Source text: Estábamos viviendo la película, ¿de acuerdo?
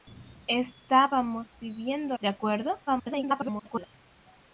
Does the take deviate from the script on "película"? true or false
true